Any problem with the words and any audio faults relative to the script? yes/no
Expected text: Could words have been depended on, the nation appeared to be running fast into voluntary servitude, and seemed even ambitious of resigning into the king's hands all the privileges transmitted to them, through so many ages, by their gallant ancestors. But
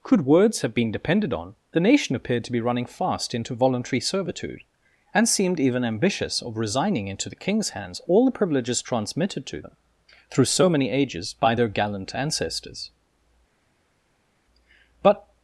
no